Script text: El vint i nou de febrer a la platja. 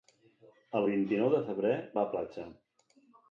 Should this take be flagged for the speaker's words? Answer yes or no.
no